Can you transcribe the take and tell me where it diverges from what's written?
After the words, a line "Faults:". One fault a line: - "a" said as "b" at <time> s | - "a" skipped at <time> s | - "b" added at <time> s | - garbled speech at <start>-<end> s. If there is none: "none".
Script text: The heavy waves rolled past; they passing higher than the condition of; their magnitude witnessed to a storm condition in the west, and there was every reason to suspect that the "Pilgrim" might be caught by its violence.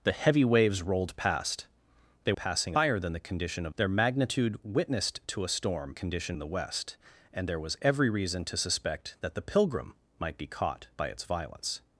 The heavy waves rolled past; they passing higher than the condition of; their magnitude witnessed to a storm condition in the west, and there was every reason to suspect that the "Pilgrim" might be caught by its violence.
Faults:
none